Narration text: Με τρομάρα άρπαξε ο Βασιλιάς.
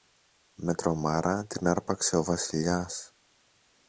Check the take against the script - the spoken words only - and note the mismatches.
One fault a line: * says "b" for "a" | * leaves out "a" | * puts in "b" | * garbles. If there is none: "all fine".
* puts in "την"